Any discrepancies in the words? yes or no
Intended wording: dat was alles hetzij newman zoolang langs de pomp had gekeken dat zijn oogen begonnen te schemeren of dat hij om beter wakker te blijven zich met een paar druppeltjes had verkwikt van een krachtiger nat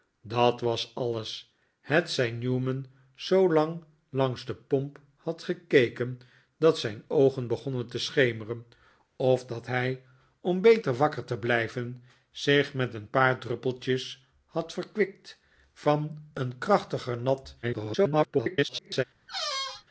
yes